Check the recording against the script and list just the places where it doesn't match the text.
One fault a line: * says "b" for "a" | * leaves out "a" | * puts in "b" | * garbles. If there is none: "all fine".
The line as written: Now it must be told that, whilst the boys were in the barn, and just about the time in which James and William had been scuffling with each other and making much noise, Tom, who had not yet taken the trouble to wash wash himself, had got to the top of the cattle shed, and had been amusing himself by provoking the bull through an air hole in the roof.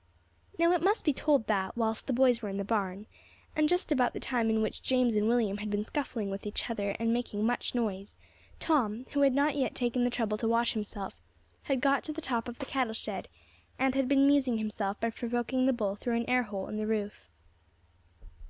* leaves out "wash"